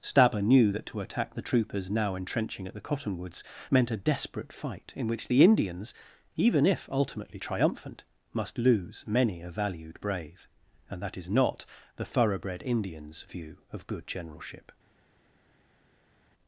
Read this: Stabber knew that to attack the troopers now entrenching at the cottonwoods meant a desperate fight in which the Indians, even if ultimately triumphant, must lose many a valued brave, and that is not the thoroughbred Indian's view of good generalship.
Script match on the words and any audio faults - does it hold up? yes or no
yes